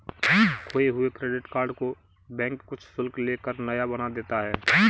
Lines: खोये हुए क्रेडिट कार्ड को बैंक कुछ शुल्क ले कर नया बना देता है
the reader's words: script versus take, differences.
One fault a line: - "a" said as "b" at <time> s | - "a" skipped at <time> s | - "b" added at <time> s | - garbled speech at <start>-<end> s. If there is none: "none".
none